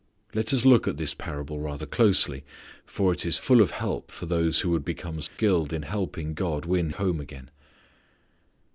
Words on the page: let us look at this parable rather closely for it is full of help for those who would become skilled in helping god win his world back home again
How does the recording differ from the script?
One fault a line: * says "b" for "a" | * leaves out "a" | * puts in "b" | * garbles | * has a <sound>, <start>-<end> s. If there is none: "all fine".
* has a dropout, 5.3-5.4 s
* leaves out "his world back"